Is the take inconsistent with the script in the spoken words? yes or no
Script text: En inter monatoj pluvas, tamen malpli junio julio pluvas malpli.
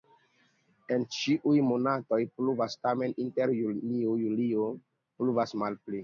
yes